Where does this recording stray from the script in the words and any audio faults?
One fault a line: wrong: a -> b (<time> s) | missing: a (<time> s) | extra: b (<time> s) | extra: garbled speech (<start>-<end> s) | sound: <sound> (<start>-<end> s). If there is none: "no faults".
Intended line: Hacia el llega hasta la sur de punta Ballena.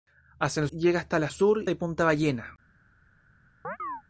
sound: chirp (3.6-4.0 s)